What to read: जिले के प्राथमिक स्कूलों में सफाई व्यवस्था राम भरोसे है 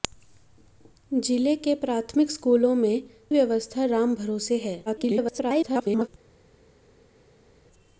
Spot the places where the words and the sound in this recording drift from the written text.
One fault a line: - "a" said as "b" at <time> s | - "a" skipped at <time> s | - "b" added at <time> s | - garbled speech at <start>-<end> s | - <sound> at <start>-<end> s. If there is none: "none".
- "सफाई" skipped at 3.0 s
- garbled speech at 4.9-6.1 s